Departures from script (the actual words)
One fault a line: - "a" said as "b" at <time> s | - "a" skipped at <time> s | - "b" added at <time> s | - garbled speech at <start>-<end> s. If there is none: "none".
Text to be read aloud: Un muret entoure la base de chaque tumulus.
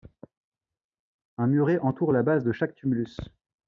none